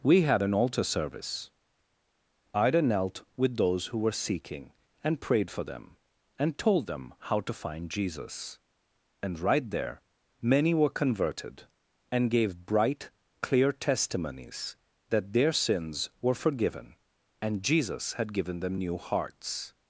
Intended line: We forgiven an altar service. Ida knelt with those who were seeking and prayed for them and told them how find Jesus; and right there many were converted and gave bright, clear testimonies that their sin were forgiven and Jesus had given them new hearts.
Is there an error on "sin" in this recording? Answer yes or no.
yes